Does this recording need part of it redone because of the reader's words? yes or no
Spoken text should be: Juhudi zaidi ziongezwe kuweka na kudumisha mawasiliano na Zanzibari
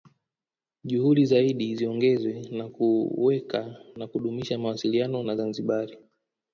yes